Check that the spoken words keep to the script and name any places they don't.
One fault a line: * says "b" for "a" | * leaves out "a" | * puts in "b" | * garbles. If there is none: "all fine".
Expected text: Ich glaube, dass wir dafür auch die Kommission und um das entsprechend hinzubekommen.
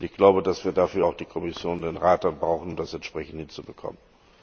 * puts in "den Rat brauchen"